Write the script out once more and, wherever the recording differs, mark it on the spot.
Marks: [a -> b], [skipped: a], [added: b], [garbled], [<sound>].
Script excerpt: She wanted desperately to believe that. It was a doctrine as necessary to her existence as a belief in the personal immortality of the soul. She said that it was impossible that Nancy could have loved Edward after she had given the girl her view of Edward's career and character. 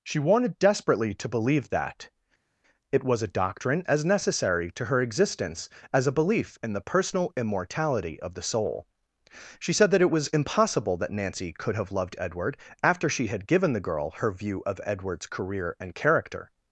She wanted desperately to believe that. It was a doctrine as necessary to her existence as a belief in the personal immortality of the soul. She said that it was impossible that Nancy could have loved Edward after she had given the girl her view of Edward's career and character.